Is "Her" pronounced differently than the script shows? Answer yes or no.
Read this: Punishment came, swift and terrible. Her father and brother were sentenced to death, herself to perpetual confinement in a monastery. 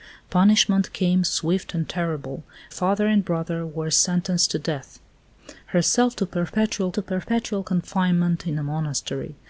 yes